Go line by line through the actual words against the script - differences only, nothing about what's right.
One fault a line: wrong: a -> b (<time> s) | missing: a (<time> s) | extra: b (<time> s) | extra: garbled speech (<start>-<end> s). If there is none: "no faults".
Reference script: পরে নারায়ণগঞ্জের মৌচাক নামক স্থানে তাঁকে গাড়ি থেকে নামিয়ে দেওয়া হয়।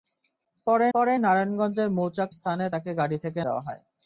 extra: পরে (0.9 s)
missing: নামক (2.3 s)
missing: নামিয়ে (3.4 s)